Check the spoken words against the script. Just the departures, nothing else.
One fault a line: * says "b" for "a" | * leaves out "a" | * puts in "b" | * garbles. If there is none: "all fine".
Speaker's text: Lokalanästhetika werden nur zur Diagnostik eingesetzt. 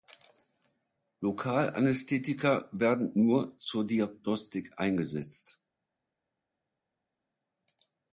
all fine